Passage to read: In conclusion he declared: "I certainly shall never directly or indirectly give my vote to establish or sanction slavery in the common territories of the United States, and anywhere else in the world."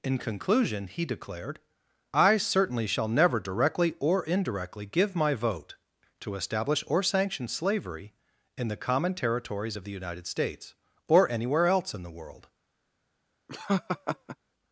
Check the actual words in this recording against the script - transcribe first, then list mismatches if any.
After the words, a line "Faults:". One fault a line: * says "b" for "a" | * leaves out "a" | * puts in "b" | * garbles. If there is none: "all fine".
In conclusion he declared: "I certainly shall never directly or indirectly give my vote to establish or sanction slavery in the common territories of the United States, or anywhere else in the world."
Faults:
* says "or" for "and"